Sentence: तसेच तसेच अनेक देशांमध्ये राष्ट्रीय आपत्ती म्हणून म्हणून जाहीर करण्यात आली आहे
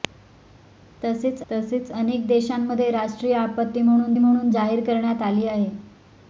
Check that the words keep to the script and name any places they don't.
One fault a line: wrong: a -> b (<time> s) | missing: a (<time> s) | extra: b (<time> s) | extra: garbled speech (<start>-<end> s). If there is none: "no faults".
no faults